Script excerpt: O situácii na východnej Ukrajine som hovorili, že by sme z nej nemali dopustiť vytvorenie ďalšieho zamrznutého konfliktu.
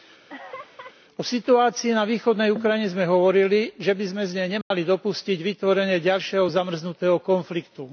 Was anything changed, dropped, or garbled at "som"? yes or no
yes